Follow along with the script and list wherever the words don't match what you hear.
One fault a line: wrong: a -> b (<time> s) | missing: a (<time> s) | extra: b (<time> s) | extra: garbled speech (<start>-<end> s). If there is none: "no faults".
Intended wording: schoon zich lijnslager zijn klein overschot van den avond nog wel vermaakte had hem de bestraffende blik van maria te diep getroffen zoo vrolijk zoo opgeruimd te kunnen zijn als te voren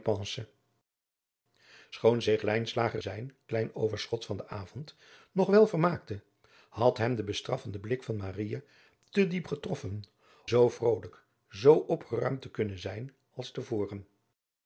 no faults